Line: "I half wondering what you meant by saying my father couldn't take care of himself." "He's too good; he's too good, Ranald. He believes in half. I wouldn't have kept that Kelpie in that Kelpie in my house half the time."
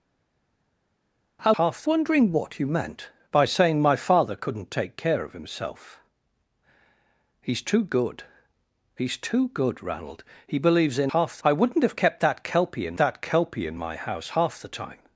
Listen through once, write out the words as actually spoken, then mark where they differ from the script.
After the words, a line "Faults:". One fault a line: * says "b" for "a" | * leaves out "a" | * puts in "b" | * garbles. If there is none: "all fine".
"I half wondering what you meant by saying my father couldn't take care of himself." "He's too good; he's too good, Ranald. He believes in half. I wouldn't have kept that Kelpie in that Kelpie in my house half the time."
Faults:
all fine